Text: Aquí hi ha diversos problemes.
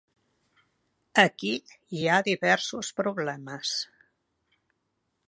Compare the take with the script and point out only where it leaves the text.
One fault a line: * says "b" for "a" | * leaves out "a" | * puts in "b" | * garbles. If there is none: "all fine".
all fine